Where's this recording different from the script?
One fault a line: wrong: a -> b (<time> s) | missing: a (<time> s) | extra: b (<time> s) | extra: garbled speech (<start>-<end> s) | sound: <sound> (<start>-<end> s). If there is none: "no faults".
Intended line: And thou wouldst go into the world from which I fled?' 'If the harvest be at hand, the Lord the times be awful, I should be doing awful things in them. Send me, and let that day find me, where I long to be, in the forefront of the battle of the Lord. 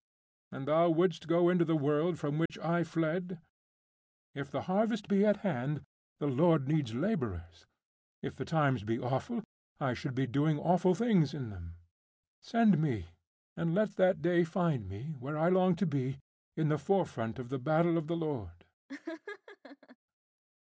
sound: dropout (2.5-2.5 s)
extra: needs labourers If (6.7 s)
sound: laugh (18.9-20.0 s)